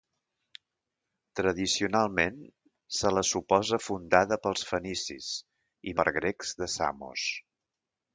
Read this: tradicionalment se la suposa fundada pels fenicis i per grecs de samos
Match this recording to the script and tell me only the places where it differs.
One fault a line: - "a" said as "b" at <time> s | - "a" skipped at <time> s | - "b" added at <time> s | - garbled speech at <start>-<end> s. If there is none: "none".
none